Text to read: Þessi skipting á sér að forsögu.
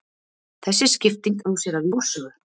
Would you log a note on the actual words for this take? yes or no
no